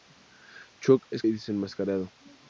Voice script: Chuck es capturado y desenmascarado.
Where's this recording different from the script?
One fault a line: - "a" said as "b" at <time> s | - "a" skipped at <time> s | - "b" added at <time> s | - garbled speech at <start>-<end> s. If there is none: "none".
- "capturado" skipped at 1.2 s